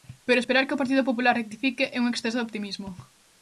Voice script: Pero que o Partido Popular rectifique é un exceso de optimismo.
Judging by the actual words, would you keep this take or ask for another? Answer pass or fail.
fail